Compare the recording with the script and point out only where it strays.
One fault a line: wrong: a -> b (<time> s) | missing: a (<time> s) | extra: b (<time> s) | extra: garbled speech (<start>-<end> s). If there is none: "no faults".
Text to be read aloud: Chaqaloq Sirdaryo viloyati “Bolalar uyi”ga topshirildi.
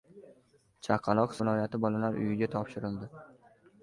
missing: Sirdaryo (1.4 s)